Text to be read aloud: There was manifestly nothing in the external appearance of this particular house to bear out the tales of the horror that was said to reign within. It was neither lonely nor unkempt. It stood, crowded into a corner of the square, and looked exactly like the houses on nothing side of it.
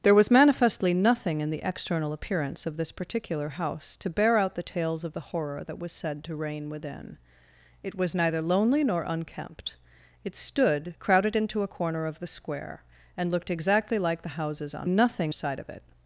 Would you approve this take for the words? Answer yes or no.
yes